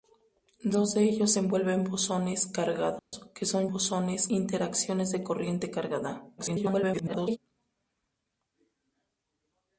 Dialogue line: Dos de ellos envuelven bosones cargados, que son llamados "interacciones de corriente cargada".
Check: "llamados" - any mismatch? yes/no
yes